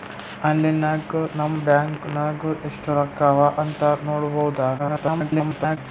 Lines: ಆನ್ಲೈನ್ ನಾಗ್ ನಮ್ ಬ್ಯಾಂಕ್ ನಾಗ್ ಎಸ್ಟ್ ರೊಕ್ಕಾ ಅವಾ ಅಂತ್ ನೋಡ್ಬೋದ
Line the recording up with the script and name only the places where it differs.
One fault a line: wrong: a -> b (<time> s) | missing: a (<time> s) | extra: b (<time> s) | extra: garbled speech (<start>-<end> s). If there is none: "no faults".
extra: garbled speech (4.8-5.8 s)